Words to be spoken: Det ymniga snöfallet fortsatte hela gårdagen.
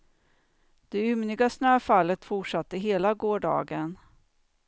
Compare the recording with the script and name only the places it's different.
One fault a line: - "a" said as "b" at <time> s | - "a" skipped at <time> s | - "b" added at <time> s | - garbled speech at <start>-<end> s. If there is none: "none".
none